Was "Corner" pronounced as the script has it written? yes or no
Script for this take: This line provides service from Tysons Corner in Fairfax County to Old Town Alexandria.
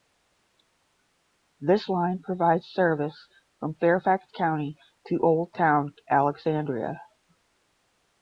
no